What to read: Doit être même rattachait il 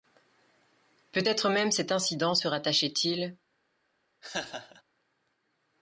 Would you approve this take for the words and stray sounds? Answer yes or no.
no